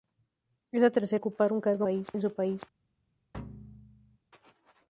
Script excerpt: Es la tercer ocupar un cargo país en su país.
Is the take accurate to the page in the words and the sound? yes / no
no